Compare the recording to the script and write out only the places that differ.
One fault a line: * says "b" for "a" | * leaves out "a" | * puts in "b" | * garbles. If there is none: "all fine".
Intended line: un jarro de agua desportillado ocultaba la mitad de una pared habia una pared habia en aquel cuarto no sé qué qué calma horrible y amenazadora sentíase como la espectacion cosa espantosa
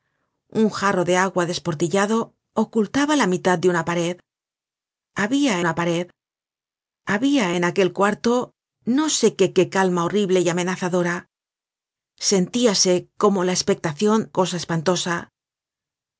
all fine